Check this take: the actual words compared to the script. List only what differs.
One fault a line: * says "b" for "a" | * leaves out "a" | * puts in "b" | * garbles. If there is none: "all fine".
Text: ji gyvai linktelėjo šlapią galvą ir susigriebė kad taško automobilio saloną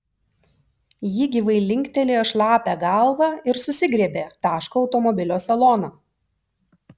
* leaves out "kad"